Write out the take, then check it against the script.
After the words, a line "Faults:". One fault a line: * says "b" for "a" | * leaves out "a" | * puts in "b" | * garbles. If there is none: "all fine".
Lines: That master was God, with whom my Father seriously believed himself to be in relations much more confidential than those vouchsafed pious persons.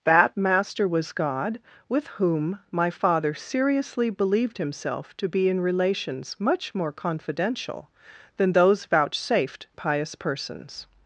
That master was God, with whom my Father seriously believed himself to be in relations much more confidential than those vouchsafed pious persons.
Faults:
all fine